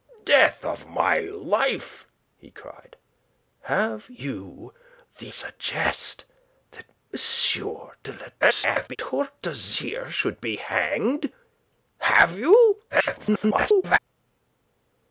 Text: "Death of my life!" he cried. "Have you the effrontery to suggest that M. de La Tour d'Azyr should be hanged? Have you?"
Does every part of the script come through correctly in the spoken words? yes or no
no